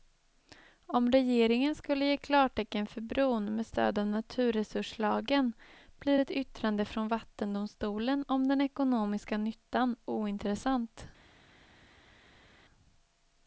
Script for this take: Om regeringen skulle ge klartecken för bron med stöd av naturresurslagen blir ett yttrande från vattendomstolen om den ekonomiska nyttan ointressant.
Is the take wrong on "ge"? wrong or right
right